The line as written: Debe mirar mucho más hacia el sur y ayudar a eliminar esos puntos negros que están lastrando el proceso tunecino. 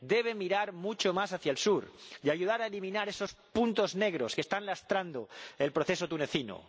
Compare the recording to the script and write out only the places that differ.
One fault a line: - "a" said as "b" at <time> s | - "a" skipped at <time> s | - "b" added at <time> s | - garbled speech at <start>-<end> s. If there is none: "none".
none